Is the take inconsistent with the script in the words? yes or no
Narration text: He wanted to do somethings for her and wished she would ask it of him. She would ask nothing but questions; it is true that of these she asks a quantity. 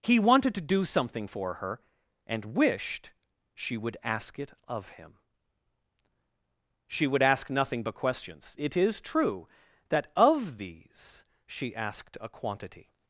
yes